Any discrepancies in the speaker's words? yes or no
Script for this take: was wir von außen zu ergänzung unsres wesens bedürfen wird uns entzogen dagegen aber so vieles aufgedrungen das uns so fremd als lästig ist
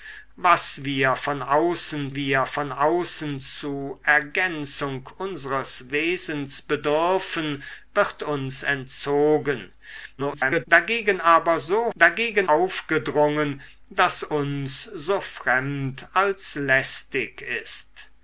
yes